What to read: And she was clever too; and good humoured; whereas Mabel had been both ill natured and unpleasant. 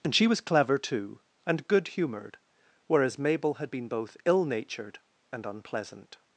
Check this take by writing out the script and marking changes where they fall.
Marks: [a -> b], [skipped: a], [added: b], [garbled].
And she was clever too; and good humoured; whereas Mabel had been both ill natured and unpleasant.